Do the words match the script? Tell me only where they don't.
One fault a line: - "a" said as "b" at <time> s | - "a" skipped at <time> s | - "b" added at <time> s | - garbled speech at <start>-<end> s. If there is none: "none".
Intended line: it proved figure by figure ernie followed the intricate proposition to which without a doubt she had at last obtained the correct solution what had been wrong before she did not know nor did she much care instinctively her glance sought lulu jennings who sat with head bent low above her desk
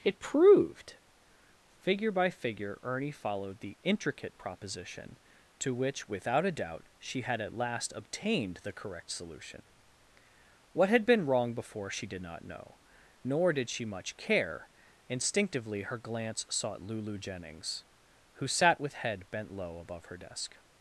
none